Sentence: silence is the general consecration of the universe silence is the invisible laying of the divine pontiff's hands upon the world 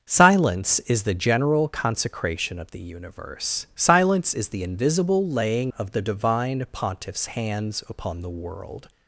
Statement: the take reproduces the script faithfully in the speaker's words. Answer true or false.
true